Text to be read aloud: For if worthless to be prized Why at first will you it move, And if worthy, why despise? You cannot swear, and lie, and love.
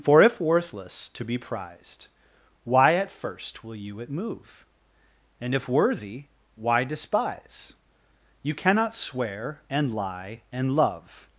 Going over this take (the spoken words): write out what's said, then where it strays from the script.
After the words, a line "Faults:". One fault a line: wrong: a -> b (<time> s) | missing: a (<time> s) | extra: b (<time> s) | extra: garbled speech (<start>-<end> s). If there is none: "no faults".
For if worthless to be prized Why at first will you it move, And if worthy, why despise? You cannot swear, and lie, and love.
Faults:
no faults